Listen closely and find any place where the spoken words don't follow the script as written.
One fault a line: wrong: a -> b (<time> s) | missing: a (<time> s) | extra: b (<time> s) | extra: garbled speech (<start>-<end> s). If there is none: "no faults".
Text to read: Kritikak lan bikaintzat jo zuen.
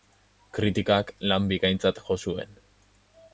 no faults